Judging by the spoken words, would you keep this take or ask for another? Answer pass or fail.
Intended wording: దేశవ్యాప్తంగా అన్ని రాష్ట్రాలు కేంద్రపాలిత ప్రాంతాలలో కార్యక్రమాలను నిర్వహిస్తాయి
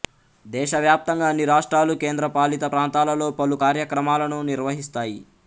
fail